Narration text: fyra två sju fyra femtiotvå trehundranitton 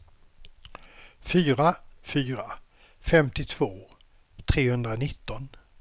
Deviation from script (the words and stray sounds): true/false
true